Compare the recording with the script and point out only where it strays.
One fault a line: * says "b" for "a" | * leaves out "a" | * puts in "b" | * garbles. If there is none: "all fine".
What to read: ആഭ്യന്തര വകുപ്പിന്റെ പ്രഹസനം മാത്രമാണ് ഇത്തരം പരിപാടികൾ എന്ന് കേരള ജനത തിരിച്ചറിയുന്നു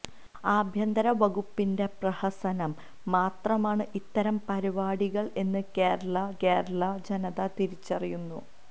* puts in "കേരള"